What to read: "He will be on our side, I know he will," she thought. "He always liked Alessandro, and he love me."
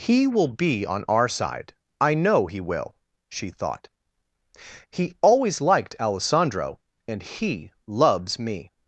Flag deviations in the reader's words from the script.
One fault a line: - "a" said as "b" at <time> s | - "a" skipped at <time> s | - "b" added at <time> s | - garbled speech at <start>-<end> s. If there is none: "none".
- "love" said as "loves" at 7.8 s